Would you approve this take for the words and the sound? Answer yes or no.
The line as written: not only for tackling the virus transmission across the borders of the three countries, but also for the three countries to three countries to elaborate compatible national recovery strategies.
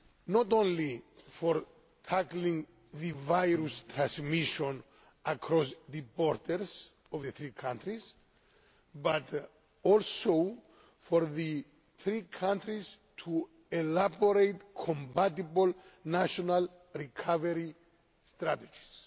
no